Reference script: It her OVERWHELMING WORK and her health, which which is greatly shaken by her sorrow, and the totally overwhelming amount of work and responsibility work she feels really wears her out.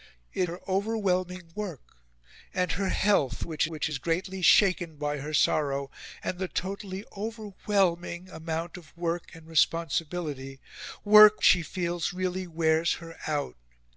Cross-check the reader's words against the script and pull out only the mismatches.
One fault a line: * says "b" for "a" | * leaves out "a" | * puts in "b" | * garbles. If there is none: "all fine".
all fine